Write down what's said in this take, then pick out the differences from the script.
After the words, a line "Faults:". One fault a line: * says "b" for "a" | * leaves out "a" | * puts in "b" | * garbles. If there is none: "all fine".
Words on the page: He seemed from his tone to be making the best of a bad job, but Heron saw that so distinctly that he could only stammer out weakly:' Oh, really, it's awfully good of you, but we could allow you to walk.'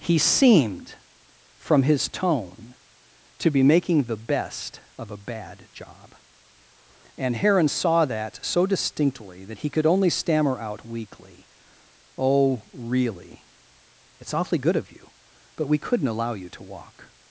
He seemed from his tone to be making the best of a bad job, and Heron saw that so distinctly that he could only stammer out weakly:' Oh, really, it's awfully good of you, but we couldn't allow you to walk.'
Faults:
* says "and" for "but"
* says "couldn't" for "could"